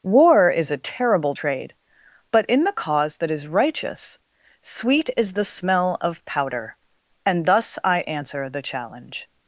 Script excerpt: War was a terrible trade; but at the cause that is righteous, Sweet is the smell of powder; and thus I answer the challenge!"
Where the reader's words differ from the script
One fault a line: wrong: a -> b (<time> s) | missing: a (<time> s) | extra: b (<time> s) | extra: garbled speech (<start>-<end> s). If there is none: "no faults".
wrong: was -> is (0.5 s)
wrong: at -> in (2.5 s)